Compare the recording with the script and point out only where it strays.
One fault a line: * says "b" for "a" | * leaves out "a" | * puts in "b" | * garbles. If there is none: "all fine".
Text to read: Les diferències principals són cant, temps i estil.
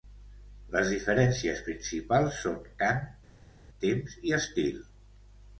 all fine